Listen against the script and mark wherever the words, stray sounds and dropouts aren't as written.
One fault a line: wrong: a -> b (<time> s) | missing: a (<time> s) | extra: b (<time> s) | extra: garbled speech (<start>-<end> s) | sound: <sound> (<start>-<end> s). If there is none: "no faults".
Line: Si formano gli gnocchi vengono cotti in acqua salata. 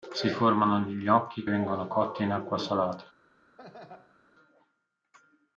sound: laugh (3.6-4.2 s)